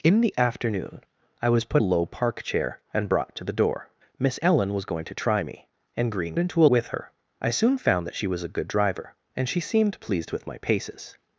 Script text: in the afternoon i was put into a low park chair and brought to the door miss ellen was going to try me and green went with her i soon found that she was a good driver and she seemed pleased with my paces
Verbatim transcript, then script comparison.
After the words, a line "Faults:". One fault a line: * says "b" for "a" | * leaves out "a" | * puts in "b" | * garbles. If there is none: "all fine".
in the afternoon i was put a low park chair and brought to the door miss ellen was going to try me and green into with her i soon found that she was a good driver and she seemed pleased with my paces
Faults:
* leaves out "into"
* says "into" for "went"